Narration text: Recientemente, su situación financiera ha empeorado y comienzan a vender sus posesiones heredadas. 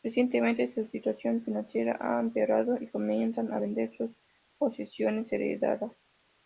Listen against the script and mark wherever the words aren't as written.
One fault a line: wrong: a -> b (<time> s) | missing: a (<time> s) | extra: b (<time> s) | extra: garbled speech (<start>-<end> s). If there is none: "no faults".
no faults